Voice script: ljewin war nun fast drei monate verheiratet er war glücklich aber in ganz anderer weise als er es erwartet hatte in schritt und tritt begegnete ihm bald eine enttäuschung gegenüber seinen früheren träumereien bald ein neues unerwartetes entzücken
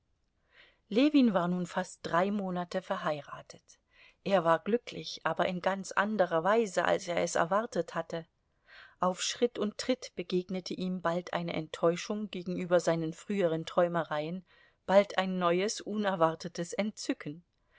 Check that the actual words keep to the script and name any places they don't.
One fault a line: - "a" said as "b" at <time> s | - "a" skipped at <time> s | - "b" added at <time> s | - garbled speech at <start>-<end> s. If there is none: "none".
- "in" said as "auf" at 9.0 s